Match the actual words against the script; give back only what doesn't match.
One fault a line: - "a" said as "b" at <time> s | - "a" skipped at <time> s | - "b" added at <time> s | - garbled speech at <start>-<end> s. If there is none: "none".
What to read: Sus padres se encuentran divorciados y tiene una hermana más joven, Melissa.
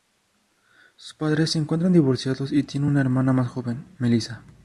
none